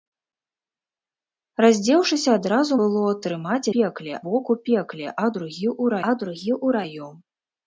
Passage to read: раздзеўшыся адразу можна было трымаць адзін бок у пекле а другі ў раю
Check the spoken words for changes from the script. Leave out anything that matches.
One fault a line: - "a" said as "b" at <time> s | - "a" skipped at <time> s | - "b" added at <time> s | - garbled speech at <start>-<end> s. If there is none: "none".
- "можна" skipped at 2.7 s
- "адзін" said as "пекле" at 3.7 s
- "а другі ў" added at 6.1 s